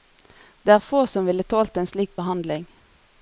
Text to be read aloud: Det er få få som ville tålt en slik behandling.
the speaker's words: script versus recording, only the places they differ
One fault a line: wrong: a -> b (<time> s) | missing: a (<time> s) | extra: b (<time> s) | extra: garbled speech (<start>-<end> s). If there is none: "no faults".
missing: få (1.0 s)